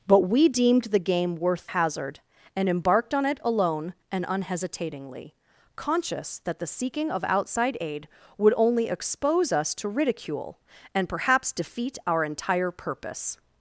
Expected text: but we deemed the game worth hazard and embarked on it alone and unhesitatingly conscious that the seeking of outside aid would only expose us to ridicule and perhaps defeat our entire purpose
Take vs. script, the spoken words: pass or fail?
pass